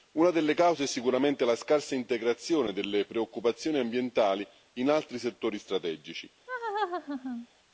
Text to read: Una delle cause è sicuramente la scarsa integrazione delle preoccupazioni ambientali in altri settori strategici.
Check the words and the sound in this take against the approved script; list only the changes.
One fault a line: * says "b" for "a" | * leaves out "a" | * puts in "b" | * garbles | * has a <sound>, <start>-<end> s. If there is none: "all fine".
* has a laugh, 6.5-7.5 s